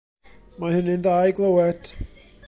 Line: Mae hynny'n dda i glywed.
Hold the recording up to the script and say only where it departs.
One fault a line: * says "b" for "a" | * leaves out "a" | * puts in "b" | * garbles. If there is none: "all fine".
all fine